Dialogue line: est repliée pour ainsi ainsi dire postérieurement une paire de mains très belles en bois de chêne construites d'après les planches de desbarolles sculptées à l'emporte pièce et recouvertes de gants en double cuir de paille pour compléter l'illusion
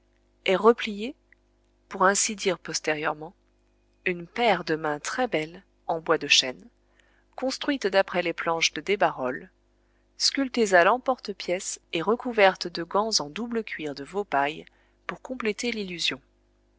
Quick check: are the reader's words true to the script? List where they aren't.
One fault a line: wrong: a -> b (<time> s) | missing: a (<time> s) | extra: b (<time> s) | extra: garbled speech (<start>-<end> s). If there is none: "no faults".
missing: ainsi (2.4 s)
extra: veau (14.0 s)